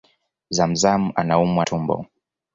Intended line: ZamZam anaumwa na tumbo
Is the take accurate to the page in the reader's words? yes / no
no